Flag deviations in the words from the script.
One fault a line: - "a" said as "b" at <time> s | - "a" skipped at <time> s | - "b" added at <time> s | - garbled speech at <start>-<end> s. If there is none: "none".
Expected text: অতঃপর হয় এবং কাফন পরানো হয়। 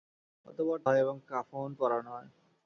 none